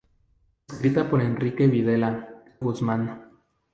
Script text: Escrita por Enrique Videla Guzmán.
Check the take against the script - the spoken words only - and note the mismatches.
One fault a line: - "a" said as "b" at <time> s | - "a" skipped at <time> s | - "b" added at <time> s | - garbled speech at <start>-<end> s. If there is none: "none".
none